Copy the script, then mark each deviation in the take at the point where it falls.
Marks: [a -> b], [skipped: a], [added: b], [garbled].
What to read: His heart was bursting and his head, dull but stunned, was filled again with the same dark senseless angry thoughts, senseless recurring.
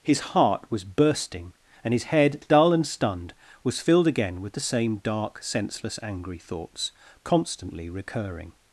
His heart was bursting and his head, dull [but -> and] stunned, was filled again with the same dark senseless angry thoughts, [senseless -> constantly] recurring.